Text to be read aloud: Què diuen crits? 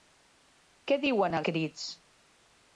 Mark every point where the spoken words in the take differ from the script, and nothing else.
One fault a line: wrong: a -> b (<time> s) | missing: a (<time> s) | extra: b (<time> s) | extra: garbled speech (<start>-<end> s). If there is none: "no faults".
no faults